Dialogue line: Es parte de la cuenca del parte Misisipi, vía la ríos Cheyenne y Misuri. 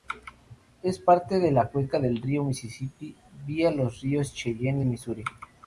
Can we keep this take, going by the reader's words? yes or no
no